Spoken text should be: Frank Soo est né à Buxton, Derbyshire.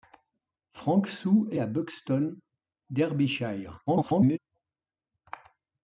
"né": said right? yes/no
no